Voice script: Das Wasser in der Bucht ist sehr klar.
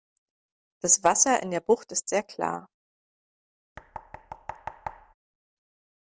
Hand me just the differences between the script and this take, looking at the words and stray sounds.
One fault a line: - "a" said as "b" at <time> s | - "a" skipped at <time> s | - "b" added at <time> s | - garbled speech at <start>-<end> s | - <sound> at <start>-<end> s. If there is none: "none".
- thud at 3.8-5.1 s